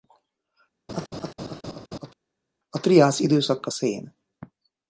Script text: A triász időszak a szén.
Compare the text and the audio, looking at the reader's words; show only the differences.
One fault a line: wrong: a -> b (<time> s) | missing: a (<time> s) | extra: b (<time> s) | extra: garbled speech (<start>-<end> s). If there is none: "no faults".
no faults